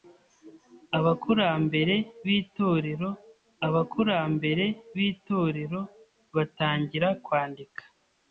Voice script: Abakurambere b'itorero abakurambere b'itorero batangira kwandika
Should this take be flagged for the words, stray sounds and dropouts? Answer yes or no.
no